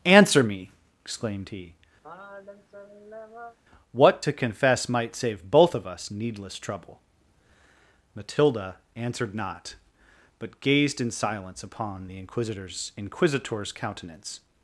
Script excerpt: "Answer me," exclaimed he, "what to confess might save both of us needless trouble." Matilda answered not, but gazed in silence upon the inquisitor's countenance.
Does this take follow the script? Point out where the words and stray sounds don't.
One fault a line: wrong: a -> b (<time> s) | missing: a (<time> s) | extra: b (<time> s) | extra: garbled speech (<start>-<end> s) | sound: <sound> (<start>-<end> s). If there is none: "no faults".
sound: sigh (2.0-3.6 s)
extra: inquisitor's (13.0 s)